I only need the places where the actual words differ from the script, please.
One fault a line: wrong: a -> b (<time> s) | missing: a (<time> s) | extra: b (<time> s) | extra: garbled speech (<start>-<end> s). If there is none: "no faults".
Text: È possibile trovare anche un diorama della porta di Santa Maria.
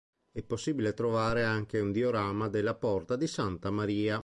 no faults